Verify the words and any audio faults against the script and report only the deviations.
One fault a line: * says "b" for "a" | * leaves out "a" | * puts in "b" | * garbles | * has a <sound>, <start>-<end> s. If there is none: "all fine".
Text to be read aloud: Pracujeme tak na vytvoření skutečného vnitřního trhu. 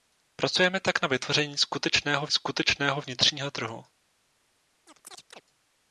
* puts in "skutečného"
* has a chirp, 4.9-5.4 s